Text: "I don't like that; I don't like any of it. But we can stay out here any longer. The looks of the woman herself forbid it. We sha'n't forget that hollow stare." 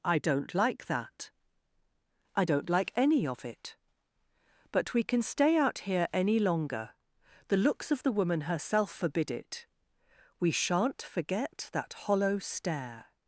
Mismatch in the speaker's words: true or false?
false